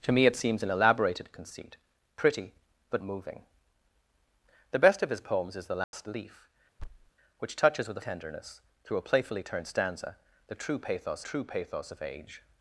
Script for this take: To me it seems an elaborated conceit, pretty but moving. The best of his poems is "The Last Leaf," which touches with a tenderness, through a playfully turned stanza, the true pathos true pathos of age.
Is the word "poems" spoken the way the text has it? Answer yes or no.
yes